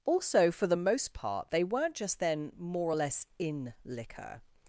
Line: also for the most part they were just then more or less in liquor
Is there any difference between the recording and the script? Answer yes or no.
yes